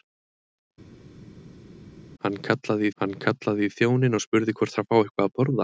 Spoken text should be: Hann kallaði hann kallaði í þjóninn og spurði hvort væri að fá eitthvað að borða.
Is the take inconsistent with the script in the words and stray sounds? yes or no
no